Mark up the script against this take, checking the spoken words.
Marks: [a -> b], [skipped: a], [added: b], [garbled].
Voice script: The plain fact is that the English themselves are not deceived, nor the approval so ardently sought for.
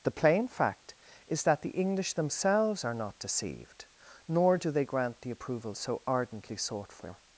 The plain fact is that the English themselves are not deceived, nor [added: do they grant] the approval so ardently sought for.